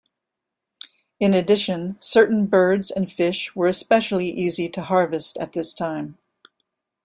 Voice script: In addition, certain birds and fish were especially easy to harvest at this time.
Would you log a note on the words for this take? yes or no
no